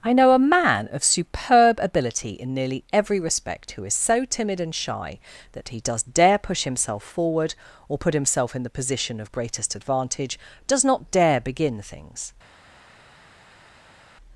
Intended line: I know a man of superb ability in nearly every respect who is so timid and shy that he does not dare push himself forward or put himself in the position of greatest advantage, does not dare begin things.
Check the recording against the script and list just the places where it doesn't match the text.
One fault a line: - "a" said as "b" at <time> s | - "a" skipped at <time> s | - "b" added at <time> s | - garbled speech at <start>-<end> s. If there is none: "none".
- "not" skipped at 6.0 s